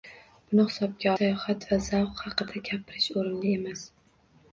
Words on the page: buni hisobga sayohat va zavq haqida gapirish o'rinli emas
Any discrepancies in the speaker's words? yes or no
no